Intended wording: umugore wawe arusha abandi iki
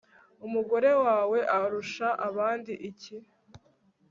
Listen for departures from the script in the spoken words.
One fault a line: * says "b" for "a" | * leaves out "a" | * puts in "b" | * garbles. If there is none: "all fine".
all fine